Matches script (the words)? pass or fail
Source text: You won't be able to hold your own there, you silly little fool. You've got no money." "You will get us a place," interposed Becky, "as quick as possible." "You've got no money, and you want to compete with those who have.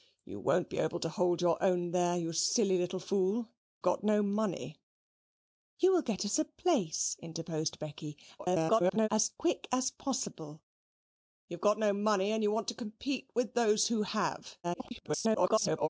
fail